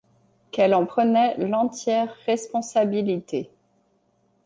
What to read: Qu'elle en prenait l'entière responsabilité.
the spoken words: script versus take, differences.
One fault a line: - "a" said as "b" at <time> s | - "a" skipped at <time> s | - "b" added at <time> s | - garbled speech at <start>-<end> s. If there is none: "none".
none